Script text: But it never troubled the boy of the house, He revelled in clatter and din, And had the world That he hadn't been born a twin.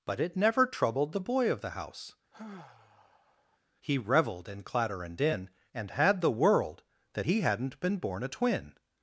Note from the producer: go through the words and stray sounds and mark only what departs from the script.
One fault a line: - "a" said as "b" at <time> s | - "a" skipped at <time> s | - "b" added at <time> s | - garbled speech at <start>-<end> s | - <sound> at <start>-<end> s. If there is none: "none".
- sigh at 2.3-3.6 s